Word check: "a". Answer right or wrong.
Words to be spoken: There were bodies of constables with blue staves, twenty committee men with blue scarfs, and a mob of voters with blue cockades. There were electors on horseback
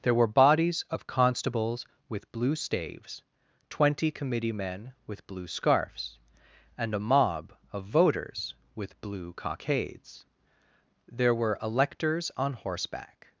right